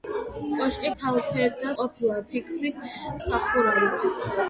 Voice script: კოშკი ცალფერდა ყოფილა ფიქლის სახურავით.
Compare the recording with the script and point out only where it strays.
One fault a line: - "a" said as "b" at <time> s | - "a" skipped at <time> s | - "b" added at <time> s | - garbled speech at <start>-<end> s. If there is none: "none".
none